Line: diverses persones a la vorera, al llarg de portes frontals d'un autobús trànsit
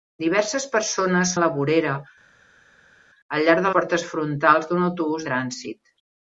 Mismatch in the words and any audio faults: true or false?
false